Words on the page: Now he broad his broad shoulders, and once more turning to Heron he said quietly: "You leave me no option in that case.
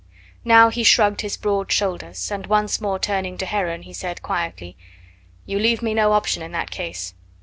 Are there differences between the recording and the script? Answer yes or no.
yes